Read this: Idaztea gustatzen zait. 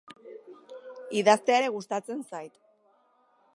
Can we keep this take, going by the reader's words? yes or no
no